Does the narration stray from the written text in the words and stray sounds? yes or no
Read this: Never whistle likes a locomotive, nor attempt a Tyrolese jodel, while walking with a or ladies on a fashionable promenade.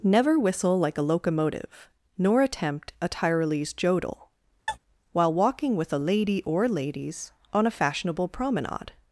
yes